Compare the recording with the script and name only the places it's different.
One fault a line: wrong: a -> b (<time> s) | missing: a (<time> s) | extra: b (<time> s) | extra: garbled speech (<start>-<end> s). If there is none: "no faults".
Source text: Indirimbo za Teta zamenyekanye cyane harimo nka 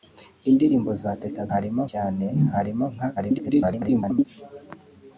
wrong: zamenyekanye -> harimo (1.5 s)
extra: garbled speech (3.2-4.3 s)